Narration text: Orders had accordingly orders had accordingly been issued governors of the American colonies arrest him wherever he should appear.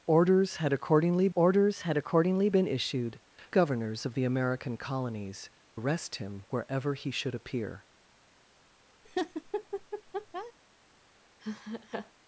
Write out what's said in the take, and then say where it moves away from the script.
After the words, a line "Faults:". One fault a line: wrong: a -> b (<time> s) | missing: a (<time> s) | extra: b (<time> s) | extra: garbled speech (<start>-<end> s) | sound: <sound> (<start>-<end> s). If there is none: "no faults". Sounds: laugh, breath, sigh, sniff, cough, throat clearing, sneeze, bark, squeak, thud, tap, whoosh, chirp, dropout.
Orders had accordingly orders had accordingly been issued governors of the American colonies arrest him wherever he should appear.
Faults:
sound: laugh (9.0-10.5 s)
sound: laugh (11.4-12.1 s)